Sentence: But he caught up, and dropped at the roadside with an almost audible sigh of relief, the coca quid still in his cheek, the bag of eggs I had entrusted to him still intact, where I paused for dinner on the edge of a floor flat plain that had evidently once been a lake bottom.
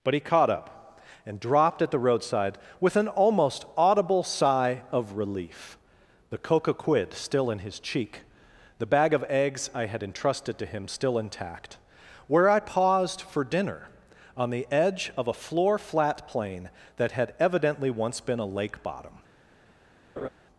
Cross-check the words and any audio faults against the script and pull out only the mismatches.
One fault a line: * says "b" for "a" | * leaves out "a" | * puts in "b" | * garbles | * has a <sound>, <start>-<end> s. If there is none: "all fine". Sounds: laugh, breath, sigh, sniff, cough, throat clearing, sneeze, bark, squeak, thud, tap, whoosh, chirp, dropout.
* has a laugh, 20.2-20.3 s